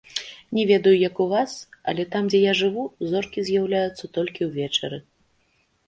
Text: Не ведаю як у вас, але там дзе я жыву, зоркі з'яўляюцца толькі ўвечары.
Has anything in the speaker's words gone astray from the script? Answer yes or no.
no